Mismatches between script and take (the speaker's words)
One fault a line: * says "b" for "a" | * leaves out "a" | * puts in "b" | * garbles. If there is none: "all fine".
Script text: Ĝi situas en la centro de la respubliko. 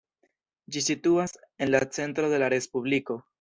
all fine